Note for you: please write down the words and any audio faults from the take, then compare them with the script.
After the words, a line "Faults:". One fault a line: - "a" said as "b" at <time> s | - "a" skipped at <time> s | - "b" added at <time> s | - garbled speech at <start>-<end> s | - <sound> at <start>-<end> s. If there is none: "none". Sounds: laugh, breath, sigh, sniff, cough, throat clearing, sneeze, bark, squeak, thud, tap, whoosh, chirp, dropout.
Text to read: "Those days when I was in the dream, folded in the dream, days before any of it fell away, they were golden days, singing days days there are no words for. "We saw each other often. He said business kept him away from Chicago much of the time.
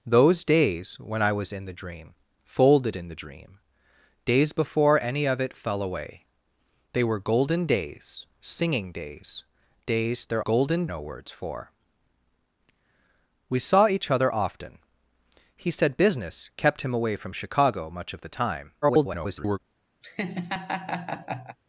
"Those days when I was in the dream, folded in the dream, days before any of it fell away, they were golden days, singing days days there golden no words for. "We saw each other often. He said business kept him away from Chicago much of the time. [garbled]
Faults:
- "are" said as "golden" at 10.4 s
- garbled speech at 18.8-19.6 s
- laugh at 20.0-21.6 s